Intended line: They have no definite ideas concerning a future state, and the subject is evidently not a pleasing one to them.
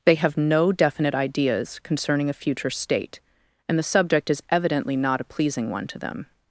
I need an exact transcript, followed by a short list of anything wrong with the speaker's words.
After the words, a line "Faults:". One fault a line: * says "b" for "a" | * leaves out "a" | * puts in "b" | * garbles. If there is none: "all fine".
They have no definite ideas concerning a future state, and the subject is evidently not a pleasing one to them.
Faults:
all fine